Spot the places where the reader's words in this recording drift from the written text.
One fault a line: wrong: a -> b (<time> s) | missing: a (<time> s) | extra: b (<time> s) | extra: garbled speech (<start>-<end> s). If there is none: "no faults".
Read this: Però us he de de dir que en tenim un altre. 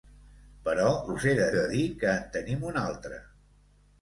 no faults